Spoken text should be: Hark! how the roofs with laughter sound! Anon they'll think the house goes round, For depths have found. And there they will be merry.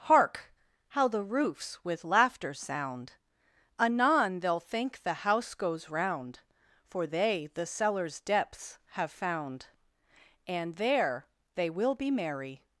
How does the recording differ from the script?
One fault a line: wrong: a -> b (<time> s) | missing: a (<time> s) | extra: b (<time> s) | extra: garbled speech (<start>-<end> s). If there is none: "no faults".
extra: they the cellar's (7.0 s)